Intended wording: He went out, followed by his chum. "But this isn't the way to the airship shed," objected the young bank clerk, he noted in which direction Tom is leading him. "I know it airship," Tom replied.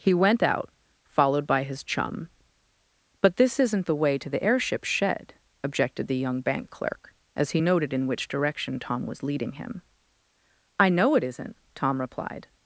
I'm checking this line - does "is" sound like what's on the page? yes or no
no